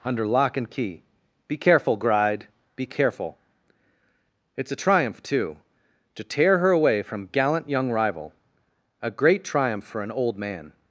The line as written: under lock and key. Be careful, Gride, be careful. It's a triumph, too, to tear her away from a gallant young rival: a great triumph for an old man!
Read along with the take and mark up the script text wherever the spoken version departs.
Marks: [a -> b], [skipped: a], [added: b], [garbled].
under lock and key. Be careful, Gride, be careful. It's a triumph, too, to tear her away from [skipped: a] gallant young rival: a great triumph for an old man!